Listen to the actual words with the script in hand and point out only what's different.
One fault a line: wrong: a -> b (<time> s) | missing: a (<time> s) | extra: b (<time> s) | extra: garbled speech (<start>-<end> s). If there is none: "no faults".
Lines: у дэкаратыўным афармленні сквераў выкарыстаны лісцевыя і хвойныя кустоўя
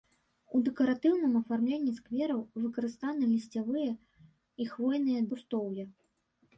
no faults